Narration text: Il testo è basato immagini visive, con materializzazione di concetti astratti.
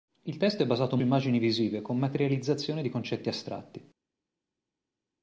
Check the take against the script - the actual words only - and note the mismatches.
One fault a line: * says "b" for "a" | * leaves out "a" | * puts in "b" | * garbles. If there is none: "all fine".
all fine